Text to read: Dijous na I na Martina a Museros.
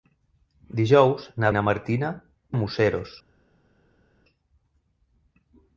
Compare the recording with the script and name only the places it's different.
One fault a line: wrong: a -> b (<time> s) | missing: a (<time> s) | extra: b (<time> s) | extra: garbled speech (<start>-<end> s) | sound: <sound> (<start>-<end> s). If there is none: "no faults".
no faults